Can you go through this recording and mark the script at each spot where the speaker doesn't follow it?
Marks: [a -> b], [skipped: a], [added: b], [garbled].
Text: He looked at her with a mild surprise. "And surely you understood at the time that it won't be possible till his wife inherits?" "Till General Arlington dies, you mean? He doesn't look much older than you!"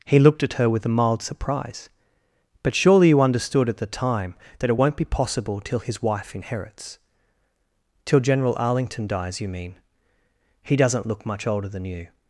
He looked at her with a mild surprise. ["And -> But] surely you understood at the time that it won't be possible till his wife inherits?" "Till General Arlington dies, you mean? He doesn't look much older than you!"